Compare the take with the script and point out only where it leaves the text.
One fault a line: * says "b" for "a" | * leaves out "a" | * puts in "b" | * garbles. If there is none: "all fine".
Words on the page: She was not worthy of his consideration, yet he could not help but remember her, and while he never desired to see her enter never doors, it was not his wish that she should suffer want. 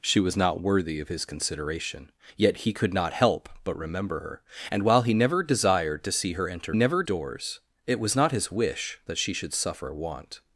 all fine